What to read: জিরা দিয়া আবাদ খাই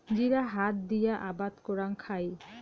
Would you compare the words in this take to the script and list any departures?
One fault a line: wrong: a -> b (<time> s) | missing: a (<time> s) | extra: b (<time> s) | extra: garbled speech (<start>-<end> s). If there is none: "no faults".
extra: হাত (0.5 s)
extra: করাং (1.6 s)